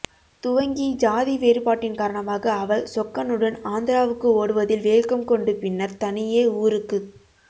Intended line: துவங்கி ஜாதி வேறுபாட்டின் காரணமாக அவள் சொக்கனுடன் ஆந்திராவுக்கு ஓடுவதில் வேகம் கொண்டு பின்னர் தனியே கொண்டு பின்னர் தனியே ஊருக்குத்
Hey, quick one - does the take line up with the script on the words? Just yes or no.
no